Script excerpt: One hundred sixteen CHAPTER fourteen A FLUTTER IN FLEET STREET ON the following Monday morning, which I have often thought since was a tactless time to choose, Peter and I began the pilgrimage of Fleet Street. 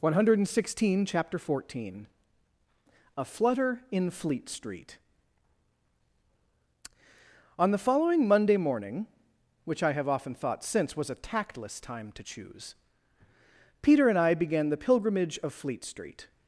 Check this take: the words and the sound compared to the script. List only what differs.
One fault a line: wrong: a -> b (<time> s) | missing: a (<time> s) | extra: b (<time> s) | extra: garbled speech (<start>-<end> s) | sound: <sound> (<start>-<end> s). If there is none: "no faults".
no faults